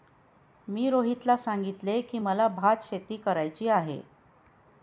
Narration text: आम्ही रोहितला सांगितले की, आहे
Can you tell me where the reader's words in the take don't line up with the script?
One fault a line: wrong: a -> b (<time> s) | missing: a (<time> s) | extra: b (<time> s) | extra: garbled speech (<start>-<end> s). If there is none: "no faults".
wrong: आम्ही -> मी (0.7 s)
extra: मला भातशेती करायची (2.2 s)